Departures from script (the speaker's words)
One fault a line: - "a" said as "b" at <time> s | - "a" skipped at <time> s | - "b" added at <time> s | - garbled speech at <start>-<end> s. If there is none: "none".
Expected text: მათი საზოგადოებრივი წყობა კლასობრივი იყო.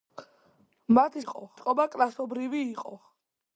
- "საზოგადოებრივი" said as "იყო" at 1.2 s